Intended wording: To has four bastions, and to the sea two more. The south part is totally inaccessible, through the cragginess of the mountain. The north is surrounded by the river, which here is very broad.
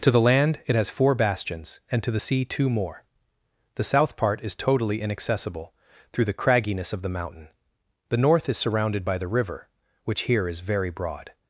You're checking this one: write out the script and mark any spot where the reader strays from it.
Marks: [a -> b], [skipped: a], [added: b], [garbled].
To [added: the land it] has four bastions, and to the sea two more. The south part is totally inaccessible, through the cragginess of the mountain. The north is surrounded by the river, which here is very broad.